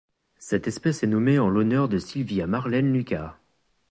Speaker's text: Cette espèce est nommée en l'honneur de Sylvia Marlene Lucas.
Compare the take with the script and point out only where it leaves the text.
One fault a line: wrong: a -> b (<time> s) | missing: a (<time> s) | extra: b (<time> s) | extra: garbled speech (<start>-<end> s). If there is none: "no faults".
no faults